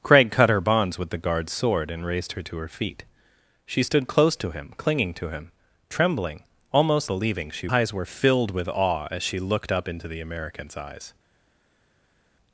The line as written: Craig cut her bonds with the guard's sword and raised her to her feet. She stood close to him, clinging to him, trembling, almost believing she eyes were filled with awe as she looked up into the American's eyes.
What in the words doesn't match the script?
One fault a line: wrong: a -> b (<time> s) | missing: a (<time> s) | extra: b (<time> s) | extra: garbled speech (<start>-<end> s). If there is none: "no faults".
no faults